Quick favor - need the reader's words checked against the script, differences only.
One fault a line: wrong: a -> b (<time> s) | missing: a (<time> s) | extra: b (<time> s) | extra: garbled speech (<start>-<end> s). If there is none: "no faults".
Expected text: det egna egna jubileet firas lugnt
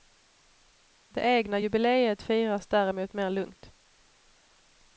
missing: egna (1.6 s)
extra: däremot mer (2.7 s)